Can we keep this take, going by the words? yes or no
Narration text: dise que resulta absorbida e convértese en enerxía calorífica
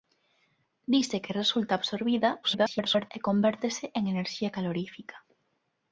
no